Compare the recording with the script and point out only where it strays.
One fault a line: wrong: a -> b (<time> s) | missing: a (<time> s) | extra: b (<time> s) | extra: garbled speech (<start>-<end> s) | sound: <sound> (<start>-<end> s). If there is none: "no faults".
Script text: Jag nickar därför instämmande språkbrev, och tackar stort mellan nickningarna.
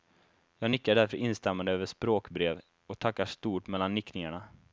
extra: över (1.7 s)